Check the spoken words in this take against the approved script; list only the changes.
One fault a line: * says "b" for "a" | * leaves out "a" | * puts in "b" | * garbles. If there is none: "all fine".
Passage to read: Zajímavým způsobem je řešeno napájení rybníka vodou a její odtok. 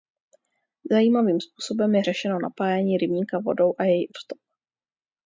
all fine